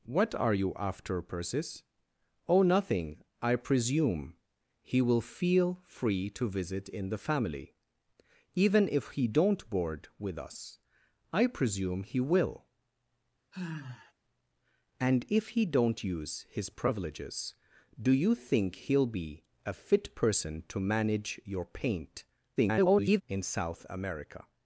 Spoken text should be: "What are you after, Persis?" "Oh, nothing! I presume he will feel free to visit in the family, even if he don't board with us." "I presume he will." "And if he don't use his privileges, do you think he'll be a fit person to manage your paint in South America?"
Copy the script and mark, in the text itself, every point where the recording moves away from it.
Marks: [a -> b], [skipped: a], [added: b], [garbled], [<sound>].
"What are you after, Persis?" "Oh, nothing! I presume he will feel free to visit in the family, even if he don't board with us." "I presume he will." [sigh] "And if he don't use his privileges, do you think he'll be a fit person to manage your paint [garbled] in South America?"